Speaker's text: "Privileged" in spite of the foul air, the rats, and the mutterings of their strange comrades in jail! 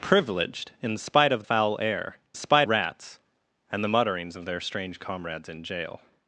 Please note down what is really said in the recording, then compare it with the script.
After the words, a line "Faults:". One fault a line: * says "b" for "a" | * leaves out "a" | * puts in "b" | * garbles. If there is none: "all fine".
"Privileged" in spite of foul air, spite rats, and the mutterings of their strange comrades in jail!
Faults:
* leaves out "the"
* says "spite" for "the"